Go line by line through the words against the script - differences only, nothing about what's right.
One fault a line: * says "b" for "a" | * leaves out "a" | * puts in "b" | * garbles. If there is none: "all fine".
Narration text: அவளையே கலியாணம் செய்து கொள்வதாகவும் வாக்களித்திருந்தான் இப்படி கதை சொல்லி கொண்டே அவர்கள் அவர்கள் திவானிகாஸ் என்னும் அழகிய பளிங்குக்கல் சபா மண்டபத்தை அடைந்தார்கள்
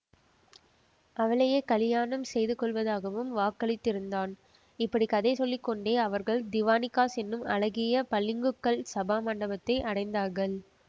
* leaves out "அவர்கள்"